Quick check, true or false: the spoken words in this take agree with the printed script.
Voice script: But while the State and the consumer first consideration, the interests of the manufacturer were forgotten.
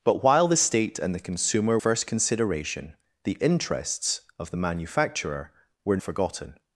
true